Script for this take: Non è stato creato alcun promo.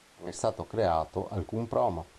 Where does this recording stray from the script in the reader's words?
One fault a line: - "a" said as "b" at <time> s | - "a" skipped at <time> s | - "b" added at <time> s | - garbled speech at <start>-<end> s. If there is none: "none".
none